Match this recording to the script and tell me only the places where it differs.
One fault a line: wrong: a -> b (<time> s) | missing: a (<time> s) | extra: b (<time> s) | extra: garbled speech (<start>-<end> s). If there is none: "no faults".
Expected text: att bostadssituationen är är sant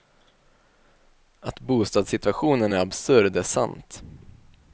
extra: absurd (2.8 s)